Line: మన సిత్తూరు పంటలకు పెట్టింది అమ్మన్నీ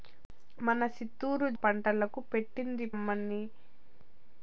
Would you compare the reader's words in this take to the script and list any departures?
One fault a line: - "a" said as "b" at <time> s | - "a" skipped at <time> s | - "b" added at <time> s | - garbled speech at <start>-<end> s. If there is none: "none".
none